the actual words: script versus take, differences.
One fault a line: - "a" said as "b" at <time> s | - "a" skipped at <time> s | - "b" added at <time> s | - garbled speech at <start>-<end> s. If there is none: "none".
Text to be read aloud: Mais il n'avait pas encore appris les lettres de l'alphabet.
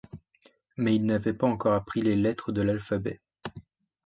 none